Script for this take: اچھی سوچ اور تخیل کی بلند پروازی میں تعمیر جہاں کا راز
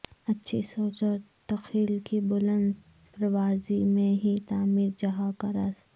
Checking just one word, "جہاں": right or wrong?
right